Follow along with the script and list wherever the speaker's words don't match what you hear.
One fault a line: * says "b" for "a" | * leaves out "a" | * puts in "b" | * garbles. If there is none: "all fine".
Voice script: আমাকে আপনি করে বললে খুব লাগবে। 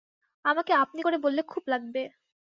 all fine